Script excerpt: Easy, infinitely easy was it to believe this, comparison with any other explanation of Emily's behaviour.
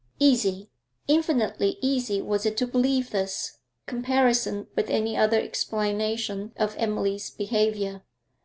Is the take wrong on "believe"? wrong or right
right